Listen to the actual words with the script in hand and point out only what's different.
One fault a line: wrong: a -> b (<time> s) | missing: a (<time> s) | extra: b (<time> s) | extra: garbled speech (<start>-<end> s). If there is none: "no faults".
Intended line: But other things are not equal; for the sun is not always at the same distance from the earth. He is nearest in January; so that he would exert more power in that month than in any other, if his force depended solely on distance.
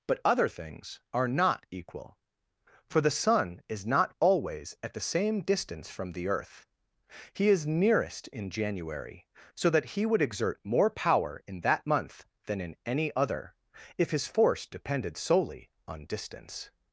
no faults